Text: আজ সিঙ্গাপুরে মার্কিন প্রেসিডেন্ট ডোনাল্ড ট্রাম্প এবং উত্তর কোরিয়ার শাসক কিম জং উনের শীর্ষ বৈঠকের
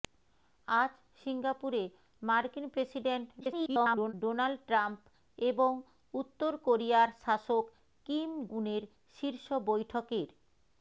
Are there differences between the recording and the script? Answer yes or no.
yes